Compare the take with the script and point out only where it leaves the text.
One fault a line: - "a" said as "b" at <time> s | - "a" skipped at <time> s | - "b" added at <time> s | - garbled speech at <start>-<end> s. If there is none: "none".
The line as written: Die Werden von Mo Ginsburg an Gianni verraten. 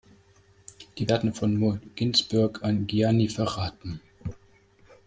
none